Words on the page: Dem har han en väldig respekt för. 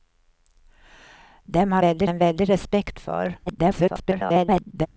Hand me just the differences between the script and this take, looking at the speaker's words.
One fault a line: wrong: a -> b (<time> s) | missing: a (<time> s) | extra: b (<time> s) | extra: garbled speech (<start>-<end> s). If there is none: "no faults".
wrong: han -> väldig (1.8 s)
extra: garbled speech (3.5-4.9 s)